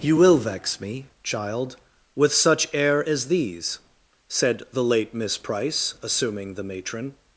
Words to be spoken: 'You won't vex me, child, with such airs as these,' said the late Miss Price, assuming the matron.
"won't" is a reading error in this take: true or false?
true